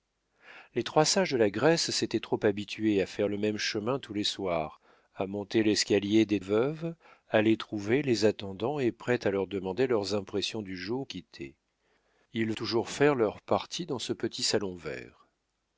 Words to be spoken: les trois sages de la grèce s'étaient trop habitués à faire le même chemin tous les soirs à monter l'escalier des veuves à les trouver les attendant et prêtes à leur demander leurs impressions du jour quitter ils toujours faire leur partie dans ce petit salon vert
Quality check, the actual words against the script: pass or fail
pass